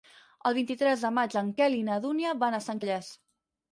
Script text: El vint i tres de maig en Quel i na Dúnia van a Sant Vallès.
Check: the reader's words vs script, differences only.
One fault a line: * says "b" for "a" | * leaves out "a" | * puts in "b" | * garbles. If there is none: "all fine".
all fine